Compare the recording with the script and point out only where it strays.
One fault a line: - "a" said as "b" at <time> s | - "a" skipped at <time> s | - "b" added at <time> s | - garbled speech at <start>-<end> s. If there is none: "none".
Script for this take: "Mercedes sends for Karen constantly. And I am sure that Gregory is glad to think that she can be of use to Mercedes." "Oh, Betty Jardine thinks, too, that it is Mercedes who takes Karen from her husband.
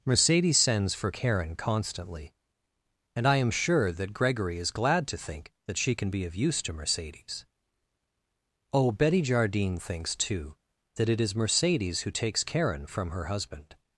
none